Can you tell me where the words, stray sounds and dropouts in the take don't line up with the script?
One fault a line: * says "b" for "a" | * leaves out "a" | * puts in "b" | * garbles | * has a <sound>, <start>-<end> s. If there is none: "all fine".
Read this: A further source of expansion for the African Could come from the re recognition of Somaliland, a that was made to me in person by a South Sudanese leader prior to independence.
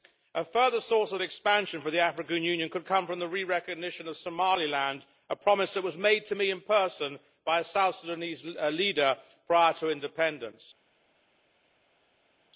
* puts in "Union"
* puts in "promise"